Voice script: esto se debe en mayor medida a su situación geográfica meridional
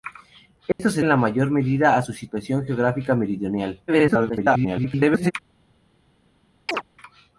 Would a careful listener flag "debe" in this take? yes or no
yes